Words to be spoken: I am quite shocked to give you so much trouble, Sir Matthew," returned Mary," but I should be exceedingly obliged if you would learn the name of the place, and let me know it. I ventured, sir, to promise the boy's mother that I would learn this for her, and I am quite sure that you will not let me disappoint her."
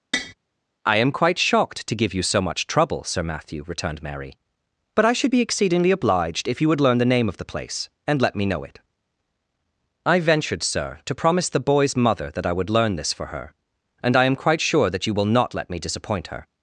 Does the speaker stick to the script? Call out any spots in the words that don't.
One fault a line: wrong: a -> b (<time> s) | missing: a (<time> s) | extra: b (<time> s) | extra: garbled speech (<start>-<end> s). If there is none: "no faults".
no faults